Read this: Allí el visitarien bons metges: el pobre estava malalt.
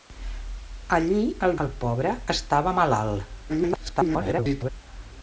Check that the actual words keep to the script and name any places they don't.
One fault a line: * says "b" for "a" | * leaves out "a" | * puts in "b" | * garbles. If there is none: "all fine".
* leaves out "visitarien bons metges"
* garbles